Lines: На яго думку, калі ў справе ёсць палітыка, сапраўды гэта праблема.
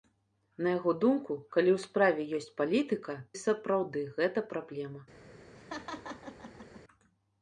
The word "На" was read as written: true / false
true